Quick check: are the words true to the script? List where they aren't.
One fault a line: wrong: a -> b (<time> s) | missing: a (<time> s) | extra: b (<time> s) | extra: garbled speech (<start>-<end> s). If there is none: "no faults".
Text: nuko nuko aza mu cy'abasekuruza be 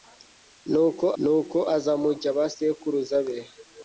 no faults